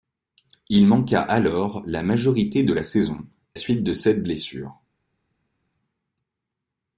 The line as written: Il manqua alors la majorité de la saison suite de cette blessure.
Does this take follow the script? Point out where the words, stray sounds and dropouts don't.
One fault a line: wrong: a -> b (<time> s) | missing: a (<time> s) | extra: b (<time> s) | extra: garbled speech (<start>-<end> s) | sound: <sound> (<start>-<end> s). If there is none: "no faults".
no faults